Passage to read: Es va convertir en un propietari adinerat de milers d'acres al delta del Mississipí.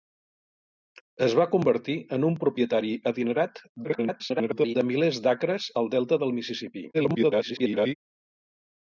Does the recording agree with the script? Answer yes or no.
no